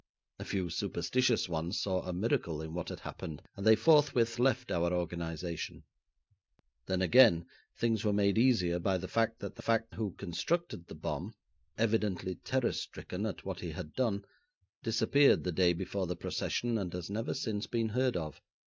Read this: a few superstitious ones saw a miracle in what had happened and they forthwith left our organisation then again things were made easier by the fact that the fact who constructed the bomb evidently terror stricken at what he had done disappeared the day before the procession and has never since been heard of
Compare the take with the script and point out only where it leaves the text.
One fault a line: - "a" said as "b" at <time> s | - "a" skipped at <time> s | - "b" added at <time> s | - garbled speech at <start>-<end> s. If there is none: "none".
none